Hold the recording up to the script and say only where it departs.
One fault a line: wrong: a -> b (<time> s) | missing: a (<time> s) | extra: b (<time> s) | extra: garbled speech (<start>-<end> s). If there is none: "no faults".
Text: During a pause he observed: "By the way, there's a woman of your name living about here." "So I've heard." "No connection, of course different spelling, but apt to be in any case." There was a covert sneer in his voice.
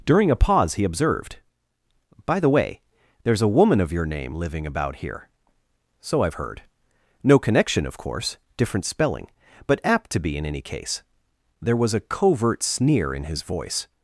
no faults